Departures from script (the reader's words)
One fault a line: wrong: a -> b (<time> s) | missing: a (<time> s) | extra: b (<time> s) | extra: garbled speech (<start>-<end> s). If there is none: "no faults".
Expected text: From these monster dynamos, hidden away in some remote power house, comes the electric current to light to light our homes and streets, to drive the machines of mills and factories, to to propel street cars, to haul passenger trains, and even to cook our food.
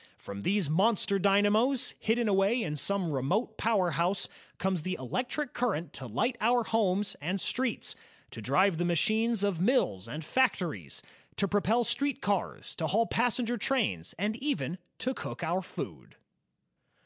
missing: to light (6.3 s)
missing: to (11.5 s)